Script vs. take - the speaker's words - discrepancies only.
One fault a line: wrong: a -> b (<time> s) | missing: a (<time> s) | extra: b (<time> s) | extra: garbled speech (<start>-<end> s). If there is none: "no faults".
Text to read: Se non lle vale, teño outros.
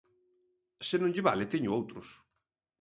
no faults